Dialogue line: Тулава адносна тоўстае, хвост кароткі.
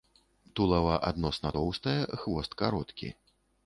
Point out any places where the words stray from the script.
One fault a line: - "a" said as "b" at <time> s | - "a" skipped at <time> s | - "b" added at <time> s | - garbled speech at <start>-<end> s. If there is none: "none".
none